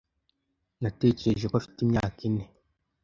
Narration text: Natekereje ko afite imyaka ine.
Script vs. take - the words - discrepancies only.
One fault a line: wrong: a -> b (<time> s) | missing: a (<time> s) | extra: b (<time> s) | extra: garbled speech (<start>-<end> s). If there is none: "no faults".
no faults